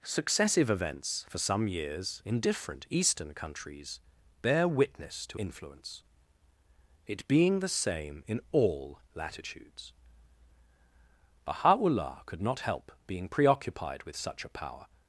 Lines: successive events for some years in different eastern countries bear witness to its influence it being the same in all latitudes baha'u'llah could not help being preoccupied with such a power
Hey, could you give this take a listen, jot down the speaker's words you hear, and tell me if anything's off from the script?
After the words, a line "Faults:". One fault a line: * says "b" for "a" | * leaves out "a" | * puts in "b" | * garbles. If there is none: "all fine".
successive events for some years in different eastern countries bear witness to influence it being the same in all latitudes baha'u'llah could not help being preoccupied with such a power
Faults:
* leaves out "its"